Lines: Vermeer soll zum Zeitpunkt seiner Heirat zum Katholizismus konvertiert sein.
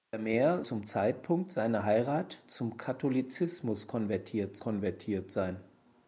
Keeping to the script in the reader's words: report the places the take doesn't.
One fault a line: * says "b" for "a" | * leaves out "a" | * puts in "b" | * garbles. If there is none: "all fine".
* leaves out "soll"
* puts in "konvertiert"